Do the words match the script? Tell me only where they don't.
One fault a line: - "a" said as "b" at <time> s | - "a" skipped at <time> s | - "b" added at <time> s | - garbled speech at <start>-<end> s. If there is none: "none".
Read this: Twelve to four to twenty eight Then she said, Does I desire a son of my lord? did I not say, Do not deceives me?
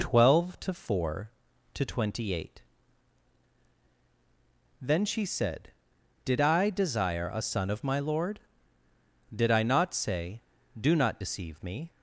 - "Does" said as "Did" at 6.2 s
- "deceives" said as "deceive" at 11.2 s